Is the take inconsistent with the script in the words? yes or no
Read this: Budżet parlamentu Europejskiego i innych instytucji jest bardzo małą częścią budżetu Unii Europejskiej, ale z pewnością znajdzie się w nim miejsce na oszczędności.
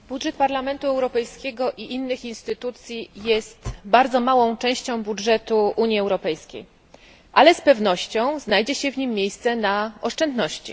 no